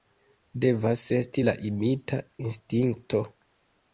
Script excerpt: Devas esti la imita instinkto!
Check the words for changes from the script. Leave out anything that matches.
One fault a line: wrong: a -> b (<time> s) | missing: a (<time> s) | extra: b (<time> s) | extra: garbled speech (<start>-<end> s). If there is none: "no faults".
no faults